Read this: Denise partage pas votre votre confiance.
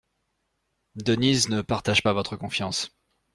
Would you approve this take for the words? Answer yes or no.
no